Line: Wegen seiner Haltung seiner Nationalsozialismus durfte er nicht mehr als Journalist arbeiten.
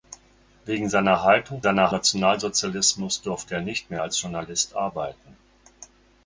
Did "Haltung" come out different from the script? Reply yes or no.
no